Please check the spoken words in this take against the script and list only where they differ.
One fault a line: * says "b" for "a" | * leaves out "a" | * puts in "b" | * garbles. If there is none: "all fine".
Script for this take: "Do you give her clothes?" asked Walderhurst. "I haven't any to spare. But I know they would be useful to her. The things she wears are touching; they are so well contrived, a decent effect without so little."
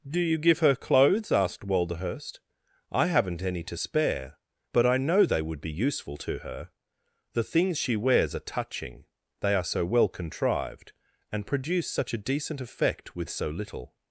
* puts in "and produce such"
* says "with" for "without"